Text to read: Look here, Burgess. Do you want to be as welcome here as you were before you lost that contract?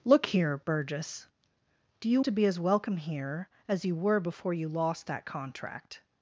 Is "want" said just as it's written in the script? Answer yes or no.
no